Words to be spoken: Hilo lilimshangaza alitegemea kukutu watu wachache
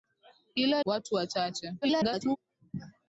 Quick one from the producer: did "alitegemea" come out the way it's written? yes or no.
no